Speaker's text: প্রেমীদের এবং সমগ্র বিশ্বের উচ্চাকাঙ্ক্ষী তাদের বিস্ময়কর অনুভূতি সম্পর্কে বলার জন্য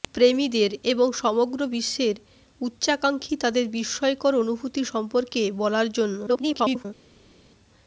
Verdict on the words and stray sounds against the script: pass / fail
fail